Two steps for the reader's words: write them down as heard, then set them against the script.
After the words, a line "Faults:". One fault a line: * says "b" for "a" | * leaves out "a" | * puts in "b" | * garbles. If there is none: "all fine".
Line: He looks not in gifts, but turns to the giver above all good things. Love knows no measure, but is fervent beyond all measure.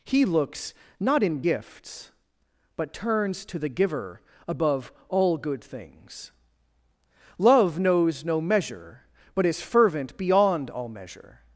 He looks not in gifts, but turns to the giver above all good things. Love knows no measure, but is fervent beyond all measure.
Faults:
all fine